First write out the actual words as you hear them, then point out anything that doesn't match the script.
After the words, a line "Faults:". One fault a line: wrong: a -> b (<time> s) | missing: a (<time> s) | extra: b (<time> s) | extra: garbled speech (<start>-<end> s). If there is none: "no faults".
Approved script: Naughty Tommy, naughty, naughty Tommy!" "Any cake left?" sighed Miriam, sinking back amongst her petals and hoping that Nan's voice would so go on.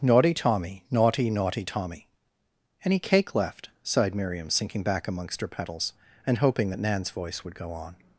Naughty Tommy, naughty, naughty Tommy!" "Any cake left?" sighed Miriam, sinking back amongst her petals and hoping that Nan's voice would go on.
Faults:
missing: so (7.5 s)